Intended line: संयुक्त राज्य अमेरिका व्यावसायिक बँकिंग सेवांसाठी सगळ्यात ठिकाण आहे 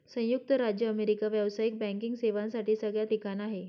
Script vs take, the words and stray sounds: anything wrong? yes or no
no